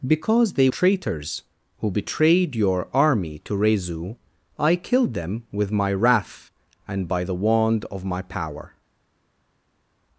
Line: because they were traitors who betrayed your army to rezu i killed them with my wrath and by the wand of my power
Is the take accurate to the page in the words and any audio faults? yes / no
no